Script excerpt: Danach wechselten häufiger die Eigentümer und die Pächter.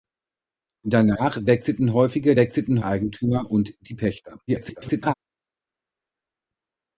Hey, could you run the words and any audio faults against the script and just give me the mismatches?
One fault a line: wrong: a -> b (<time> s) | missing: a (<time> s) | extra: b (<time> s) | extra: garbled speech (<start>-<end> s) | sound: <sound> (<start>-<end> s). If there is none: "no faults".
wrong: die -> wechselten (2.3 s)
extra: garbled speech (4.5-5.1 s)